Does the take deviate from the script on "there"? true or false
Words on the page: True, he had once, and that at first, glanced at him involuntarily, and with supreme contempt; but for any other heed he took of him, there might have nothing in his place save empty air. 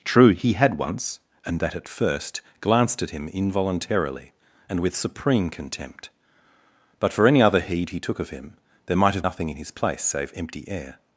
false